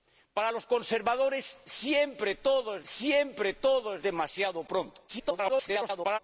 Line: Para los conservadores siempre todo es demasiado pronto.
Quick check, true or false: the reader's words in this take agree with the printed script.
false